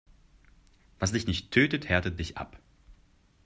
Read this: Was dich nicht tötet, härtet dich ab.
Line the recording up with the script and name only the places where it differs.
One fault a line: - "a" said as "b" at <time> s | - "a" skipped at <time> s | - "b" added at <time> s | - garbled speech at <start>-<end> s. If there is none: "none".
none